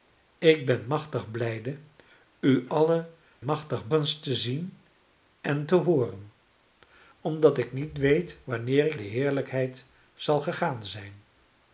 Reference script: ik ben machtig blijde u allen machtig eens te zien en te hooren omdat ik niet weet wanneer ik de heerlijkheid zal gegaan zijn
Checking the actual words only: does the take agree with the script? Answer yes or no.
yes